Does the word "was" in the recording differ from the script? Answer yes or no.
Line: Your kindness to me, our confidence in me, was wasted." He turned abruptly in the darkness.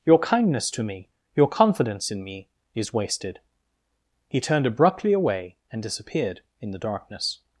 yes